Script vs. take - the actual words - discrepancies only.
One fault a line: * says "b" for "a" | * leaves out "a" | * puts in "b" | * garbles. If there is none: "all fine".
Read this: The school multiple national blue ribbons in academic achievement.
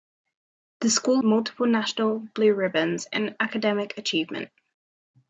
all fine